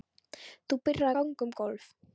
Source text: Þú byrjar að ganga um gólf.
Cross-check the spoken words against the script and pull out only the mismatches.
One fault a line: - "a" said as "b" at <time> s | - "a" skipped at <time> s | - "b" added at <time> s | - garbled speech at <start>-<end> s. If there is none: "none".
- "að" skipped at 1.1 s